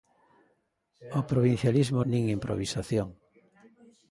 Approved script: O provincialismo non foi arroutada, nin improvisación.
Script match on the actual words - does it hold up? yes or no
no